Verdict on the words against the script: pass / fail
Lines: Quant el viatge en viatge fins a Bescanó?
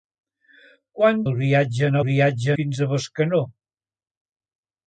pass